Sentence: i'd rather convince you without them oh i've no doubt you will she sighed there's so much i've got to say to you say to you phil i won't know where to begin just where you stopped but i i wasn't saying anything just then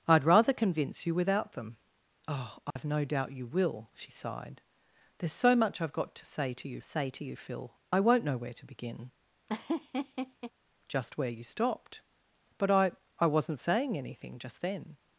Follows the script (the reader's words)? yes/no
yes